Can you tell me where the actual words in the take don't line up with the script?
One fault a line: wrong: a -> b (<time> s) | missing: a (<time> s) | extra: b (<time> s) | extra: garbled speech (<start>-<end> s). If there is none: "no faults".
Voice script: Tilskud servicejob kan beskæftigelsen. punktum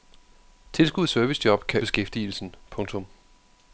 no faults